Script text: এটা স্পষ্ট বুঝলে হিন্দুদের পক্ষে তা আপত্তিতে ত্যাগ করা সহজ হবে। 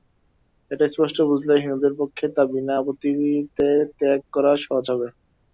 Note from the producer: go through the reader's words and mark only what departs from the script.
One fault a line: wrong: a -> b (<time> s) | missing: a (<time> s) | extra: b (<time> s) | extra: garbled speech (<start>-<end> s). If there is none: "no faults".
extra: বিনা (2.5 s)